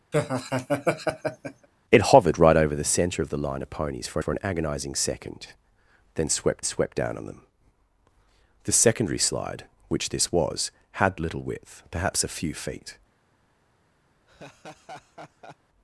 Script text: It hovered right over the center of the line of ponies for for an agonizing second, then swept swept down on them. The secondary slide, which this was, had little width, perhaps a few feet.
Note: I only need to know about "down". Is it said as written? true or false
true